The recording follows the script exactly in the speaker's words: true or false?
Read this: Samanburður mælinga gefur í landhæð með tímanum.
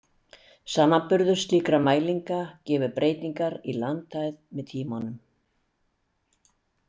false